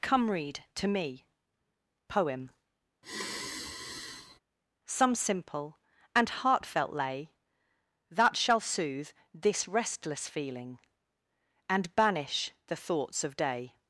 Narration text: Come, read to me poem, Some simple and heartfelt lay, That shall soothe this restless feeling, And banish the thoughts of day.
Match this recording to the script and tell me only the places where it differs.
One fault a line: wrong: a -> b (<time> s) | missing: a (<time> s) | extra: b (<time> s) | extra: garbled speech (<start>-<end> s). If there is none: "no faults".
no faults